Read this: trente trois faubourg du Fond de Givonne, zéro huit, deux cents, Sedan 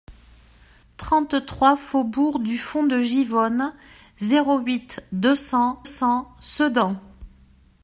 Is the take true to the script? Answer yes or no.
no